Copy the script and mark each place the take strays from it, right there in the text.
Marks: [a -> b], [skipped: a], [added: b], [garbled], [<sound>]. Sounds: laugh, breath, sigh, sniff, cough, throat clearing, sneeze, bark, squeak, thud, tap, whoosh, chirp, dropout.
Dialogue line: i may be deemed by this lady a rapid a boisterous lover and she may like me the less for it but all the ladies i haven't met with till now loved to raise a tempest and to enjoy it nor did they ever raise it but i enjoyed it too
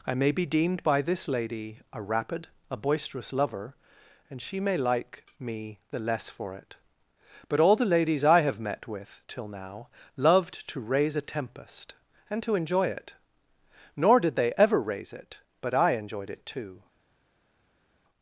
i may be deemed by this lady a rapid a boisterous lover and she may like me the less for it but all the ladies i [haven't -> have] met with till now loved to raise a tempest and to enjoy it nor did they ever raise it but i enjoyed it too